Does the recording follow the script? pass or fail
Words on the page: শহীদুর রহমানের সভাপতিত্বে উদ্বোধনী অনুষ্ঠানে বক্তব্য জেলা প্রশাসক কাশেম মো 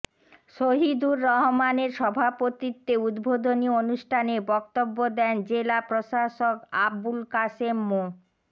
fail